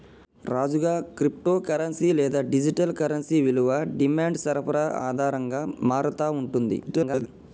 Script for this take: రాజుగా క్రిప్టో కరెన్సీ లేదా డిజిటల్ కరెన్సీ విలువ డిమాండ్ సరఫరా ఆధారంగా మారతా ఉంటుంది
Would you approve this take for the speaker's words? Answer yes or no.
no